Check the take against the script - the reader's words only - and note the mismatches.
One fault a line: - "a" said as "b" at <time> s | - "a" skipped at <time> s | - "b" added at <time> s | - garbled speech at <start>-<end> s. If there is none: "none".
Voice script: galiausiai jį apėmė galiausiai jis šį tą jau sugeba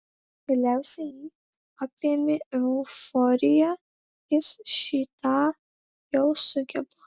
- "galiausiai" said as "euforija" at 2.6 s